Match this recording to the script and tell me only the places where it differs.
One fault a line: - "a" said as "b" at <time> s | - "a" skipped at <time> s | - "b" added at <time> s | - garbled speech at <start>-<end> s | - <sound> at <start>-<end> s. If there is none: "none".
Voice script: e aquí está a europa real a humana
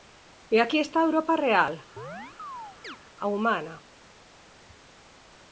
- chirp at 2.0-3.0 s